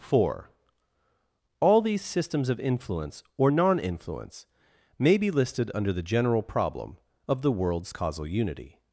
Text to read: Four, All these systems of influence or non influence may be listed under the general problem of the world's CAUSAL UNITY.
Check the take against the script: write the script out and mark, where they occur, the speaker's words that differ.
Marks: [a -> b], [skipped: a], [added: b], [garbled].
Four, All these systems of influence or non influence may be listed under the general problem of the world's CAUSAL UNITY.